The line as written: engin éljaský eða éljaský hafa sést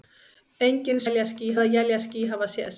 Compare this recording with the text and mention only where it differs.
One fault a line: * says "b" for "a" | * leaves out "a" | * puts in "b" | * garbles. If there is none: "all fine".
all fine